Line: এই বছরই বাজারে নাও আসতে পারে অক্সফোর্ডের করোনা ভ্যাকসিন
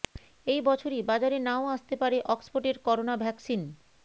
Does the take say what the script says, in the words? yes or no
yes